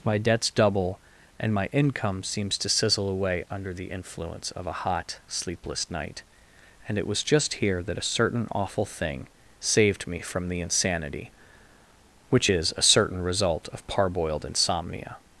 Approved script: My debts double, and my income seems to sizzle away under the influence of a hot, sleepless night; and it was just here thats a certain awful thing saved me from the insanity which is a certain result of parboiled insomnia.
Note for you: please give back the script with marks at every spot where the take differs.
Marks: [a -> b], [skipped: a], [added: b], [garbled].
My debts double, and my income seems to sizzle away under the influence of a hot, sleepless night; and it was just here [thats -> that] a certain awful thing saved me from the insanity which is a certain result of parboiled insomnia.